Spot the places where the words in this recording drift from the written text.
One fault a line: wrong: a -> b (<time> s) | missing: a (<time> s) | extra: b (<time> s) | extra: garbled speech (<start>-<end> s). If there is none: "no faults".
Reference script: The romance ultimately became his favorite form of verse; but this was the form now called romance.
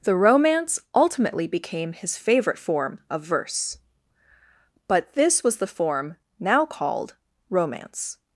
no faults